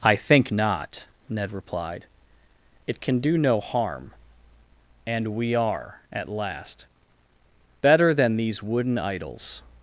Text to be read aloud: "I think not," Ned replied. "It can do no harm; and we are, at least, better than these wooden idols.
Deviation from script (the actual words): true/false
true